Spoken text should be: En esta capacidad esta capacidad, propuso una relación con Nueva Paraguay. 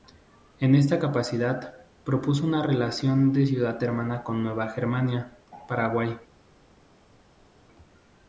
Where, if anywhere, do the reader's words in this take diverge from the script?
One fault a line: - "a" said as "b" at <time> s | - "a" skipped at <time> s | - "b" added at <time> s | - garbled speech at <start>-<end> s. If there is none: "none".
- "esta capacidad" skipped at 1.8 s
- "de ciudad hermana" added at 3.3 s
- "Germania" added at 4.7 s